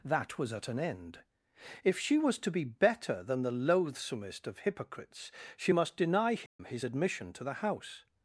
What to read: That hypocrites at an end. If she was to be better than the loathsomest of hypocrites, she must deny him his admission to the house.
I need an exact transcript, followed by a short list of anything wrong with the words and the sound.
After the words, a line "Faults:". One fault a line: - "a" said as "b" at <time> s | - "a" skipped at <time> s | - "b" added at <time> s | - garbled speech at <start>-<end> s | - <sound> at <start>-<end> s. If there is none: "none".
That was at an end. If she was to be better than the loathsomest of hypocrites, she must deny him his admission to the house.
Faults:
- "hypocrites" said as "was" at 0.4 s
- dropout at 6.5-6.6 s